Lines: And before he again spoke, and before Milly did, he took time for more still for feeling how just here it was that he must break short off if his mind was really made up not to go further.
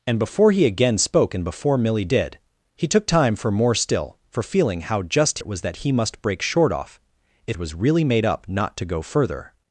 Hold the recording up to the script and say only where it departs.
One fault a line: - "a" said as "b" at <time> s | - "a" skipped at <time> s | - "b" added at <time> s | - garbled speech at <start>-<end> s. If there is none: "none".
- "here" skipped at 5.4 s
- "his mind" skipped at 7.6 s